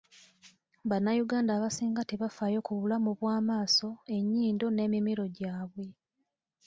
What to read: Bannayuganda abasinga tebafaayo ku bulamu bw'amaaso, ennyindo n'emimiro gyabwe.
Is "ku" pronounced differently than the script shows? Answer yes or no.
no